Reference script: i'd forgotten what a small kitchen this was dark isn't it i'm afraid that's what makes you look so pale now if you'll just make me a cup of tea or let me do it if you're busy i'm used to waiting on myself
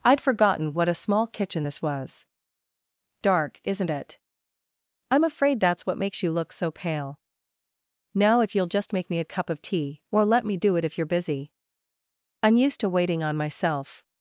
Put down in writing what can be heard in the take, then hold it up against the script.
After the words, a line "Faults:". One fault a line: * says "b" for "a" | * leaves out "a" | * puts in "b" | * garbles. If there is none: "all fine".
i'd forgotten what a small kitchen this was dark isn't it i'm afraid that's what makes you look so pale now if you'll just make me a cup of tea or let me do it if you're busy i'm used to waiting on myself
Faults:
all fine